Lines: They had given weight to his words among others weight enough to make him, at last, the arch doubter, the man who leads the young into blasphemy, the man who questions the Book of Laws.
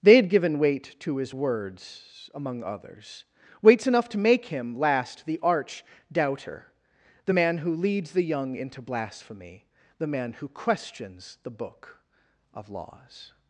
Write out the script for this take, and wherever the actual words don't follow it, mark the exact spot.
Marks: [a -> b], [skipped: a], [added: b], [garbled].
They had given weight to his words among others [weight -> weights] enough to make him, [skipped: at] last, the arch doubter, the man who leads the young into blasphemy, the man who questions the Book of Laws.